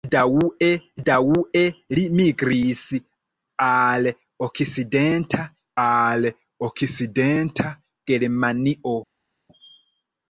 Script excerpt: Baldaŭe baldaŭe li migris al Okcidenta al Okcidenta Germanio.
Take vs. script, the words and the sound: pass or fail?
pass